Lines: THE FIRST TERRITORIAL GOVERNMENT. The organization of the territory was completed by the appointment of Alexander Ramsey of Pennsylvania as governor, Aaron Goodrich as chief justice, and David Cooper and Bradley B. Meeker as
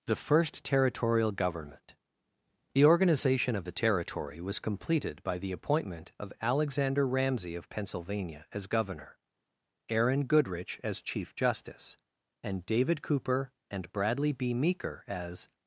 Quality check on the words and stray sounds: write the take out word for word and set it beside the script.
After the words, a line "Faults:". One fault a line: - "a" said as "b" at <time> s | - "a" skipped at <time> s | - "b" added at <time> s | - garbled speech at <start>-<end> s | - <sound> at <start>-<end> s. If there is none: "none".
THE FIRST TERRITORIAL GOVERNMENT. The organization of the territory was completed by the appointment of Alexander Ramsey of Pennsylvania as governor, Aaron Goodrich as chief justice, and David Cooper and Bradley B. Meeker as
Faults:
none